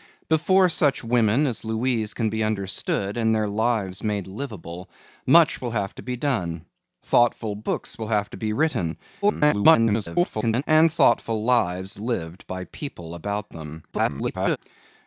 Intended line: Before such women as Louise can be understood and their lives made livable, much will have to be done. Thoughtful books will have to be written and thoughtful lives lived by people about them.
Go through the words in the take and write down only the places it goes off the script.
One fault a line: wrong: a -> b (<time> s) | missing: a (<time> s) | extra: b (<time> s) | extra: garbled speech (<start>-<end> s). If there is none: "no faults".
extra: garbled speech (9.2-10.6 s)
extra: garbled speech (13.9-14.6 s)